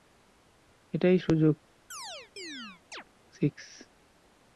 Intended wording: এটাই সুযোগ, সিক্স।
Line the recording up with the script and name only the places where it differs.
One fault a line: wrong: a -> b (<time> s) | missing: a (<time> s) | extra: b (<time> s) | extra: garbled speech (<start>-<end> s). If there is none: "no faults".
no faults